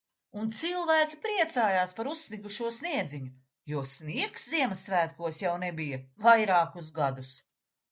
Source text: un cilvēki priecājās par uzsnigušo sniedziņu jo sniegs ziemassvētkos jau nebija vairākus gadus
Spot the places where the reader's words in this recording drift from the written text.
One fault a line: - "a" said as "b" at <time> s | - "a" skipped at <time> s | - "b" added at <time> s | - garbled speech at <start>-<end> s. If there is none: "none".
none